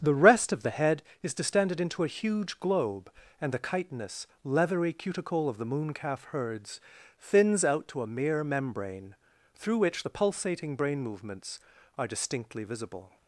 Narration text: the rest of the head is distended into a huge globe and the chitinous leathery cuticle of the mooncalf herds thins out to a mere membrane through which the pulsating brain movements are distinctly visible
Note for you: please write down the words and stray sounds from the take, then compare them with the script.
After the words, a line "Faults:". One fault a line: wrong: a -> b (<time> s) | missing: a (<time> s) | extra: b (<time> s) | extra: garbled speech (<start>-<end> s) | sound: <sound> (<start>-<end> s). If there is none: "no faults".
the rest of the head is distended into a huge globe and the chitinous leathery cuticle of the mooncalf herds thins out to a mere membrane through which the pulsating brain movements are distinctly visible
Faults:
no faults